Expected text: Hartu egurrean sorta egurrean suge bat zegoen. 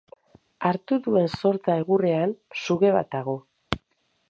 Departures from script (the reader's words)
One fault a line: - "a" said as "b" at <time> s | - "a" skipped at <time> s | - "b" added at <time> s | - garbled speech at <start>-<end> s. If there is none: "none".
- "egurrean" said as "duen" at 1.1 s
- "zegoen" said as "dago" at 3.2 s